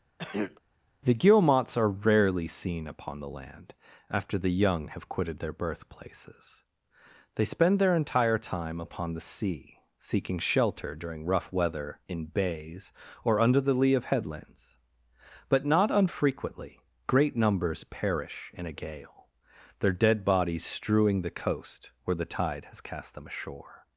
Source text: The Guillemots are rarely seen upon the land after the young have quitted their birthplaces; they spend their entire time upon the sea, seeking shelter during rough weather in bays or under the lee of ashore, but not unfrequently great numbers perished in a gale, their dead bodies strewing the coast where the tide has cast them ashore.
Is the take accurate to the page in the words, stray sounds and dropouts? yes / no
no